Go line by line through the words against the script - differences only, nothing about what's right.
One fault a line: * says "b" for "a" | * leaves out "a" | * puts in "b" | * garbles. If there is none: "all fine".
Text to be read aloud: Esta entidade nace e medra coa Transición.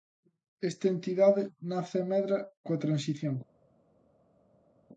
all fine